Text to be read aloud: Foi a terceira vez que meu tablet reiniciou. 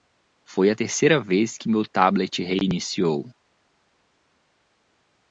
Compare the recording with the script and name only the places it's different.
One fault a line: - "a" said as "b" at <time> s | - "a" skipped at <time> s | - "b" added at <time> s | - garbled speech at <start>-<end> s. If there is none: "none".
none